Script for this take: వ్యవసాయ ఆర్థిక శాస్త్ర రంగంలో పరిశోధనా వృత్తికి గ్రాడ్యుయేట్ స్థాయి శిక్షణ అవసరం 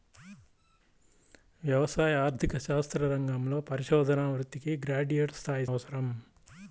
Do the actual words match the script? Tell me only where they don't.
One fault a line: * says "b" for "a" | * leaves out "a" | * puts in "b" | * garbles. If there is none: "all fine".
* leaves out "శిక్షణ"